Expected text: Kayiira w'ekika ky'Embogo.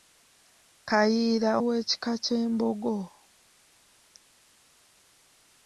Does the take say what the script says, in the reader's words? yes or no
yes